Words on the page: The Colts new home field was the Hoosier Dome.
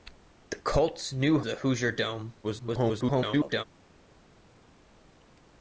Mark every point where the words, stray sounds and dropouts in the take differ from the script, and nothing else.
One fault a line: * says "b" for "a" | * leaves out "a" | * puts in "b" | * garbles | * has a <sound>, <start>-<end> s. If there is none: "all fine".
* leaves out "home field was"
* garbles